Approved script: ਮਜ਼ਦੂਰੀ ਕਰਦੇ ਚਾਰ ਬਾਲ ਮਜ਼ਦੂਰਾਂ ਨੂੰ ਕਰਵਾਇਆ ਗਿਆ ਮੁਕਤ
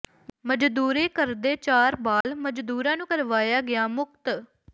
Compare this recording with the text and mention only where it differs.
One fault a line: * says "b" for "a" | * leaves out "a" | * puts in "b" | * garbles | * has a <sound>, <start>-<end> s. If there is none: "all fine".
* has a dropout, 2.2-2.2 s